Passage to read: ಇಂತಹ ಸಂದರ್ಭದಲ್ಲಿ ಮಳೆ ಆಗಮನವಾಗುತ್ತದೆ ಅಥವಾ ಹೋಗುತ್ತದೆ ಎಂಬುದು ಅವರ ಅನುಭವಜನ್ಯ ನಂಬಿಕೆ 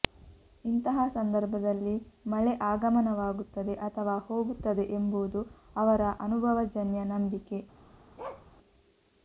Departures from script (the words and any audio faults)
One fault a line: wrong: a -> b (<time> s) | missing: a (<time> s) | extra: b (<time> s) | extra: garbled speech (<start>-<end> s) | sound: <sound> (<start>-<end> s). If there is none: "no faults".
sound: bark (8.2-8.5 s)